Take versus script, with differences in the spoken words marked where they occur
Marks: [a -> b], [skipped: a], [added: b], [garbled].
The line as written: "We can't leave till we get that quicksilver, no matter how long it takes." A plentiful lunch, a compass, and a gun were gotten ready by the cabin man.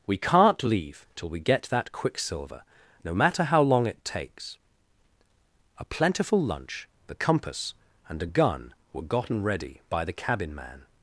"We can't leave till we get that quicksilver, no matter how long it takes." A plentiful lunch, [a -> the] compass, and a gun were gotten ready by the cabin man.